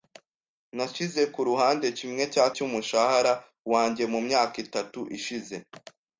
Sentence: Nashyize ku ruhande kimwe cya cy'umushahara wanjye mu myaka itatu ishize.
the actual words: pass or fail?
pass